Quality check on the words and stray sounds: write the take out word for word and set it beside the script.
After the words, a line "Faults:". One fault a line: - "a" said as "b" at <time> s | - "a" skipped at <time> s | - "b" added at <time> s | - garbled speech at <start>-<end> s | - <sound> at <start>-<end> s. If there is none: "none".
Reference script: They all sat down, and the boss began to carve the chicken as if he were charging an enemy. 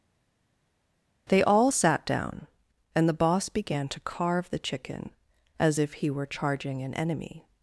They all sat down, and the boss began to carve the chicken as if he were charging an enemy.
Faults:
none